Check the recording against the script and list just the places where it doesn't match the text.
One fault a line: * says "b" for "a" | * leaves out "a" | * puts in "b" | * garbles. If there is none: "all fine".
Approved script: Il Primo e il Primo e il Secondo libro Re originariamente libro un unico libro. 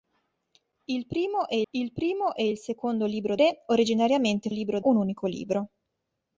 all fine